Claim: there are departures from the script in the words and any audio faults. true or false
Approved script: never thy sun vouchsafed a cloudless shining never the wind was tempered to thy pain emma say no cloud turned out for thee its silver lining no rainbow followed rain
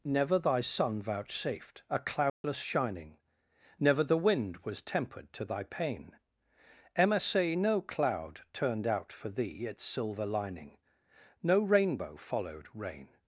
true